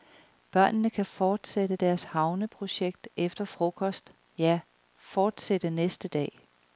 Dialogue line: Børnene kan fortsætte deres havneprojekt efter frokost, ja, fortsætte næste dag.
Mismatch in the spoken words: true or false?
false